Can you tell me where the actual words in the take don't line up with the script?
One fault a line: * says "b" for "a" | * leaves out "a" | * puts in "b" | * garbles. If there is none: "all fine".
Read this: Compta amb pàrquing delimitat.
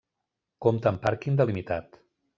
all fine